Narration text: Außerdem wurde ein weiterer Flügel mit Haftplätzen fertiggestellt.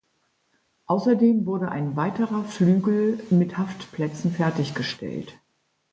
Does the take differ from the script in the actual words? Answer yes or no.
no